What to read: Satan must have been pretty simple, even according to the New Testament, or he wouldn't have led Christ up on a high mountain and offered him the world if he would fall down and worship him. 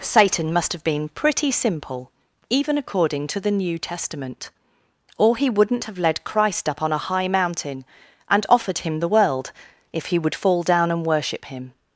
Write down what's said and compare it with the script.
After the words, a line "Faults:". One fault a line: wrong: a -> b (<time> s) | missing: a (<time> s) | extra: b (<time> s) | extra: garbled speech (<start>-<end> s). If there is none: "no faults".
Satan must have been pretty simple, even according to the New Testament, or he wouldn't have led Christ up on a high mountain and offered him the world if he would fall down and worship him.
Faults:
no faults